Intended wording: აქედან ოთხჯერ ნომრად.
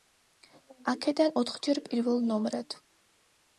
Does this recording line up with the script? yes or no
no